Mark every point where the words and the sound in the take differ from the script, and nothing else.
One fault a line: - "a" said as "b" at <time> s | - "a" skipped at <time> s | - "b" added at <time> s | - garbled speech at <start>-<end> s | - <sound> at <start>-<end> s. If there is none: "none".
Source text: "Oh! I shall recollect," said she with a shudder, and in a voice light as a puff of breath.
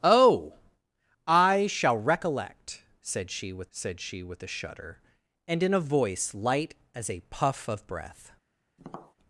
- "said she with" added at 3.7 s
- tap at 8.8-9.1 s